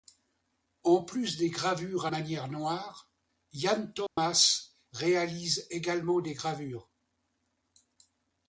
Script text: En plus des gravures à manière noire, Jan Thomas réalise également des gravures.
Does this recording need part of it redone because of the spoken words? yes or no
no